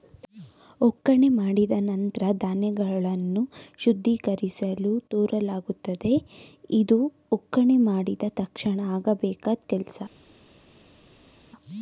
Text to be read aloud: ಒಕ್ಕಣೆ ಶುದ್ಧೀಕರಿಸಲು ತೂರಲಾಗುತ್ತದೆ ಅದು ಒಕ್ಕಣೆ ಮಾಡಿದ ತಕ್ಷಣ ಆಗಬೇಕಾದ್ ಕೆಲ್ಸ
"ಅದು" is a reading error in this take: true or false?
true